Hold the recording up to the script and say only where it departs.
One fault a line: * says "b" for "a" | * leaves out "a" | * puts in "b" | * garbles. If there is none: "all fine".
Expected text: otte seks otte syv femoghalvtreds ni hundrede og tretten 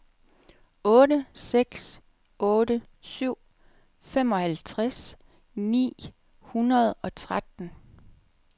all fine